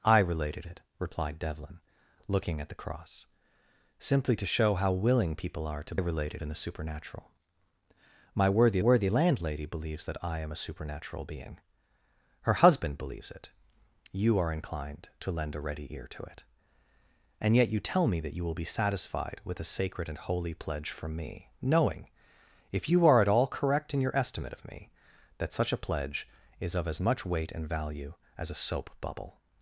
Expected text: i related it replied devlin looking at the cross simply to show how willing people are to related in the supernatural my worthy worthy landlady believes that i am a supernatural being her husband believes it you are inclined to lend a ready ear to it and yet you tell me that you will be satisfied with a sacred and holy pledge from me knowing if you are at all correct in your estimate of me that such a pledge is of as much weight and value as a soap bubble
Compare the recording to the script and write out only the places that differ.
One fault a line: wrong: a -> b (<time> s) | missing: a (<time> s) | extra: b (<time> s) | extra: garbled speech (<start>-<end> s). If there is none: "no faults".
no faults